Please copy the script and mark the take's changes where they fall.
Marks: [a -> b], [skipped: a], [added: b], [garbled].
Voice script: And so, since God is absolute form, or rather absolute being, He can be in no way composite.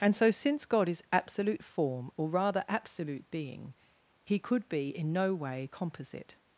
And so, since God is absolute form, or rather absolute being, He [can -> could] be in no way composite.